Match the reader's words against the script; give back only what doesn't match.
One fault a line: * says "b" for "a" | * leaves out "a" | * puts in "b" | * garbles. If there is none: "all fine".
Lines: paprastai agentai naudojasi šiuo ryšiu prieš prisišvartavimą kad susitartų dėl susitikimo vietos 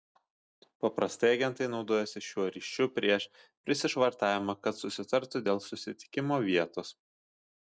all fine